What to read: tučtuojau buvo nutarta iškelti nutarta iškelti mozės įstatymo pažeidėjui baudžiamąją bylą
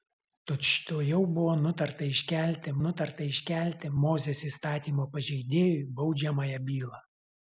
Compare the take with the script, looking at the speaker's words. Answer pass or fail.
pass